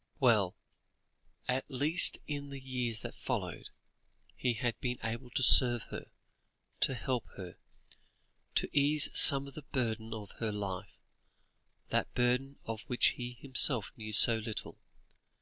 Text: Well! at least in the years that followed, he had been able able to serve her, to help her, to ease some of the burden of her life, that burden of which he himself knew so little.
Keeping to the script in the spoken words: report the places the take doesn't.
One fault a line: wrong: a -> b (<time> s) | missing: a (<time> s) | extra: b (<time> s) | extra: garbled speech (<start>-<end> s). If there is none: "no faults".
missing: able (5.3 s)